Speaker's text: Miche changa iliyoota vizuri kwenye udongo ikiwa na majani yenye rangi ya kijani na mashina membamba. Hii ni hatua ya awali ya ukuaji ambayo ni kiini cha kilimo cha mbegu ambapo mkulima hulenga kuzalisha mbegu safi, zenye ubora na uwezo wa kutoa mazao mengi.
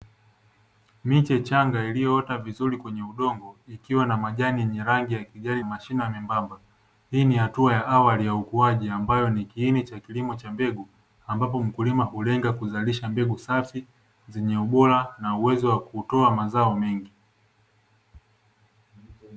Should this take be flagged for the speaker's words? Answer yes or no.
yes